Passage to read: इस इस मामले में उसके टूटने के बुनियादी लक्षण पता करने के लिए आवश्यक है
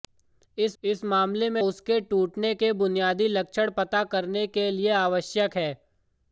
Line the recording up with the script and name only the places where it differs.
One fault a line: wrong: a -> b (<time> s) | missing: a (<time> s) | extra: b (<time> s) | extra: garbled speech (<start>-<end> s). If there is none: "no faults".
no faults